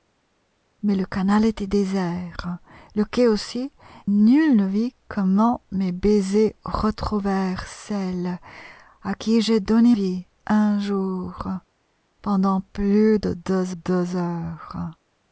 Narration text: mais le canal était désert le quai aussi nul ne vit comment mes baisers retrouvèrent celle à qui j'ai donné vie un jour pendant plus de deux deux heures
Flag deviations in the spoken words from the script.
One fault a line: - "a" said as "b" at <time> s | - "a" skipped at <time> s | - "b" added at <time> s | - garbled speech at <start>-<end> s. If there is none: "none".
none